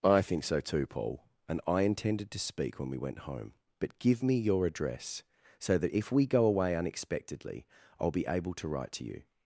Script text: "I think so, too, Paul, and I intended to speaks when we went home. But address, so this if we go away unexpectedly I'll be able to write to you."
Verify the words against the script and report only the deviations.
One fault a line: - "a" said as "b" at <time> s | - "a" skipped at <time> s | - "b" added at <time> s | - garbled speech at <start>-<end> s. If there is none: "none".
- "speaks" said as "speak" at 2.4 s
- "give me your" added at 4.0 s
- "this" said as "that" at 5.8 s